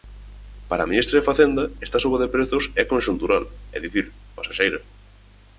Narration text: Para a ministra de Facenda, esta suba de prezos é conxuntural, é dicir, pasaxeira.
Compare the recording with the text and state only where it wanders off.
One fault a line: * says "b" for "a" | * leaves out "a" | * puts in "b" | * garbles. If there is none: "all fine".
all fine